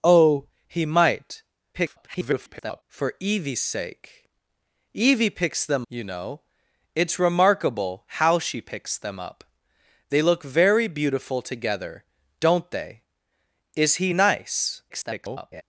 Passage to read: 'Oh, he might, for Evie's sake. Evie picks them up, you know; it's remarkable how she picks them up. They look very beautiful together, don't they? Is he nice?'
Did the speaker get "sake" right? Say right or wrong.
right